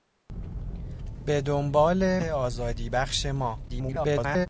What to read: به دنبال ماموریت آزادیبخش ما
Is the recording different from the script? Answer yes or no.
yes